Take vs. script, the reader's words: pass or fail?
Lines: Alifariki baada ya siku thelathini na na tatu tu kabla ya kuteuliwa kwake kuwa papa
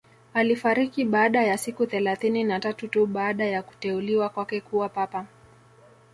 fail